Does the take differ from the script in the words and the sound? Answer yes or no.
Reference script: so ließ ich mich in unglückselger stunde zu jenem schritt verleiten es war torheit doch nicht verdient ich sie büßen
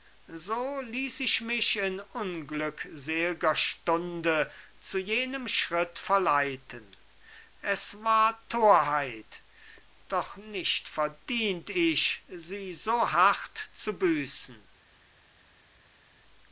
yes